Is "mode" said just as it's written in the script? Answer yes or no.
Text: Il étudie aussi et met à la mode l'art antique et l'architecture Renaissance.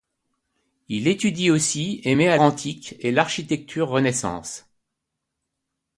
no